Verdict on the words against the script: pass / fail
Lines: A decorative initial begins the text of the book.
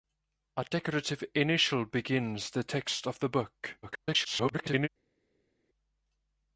fail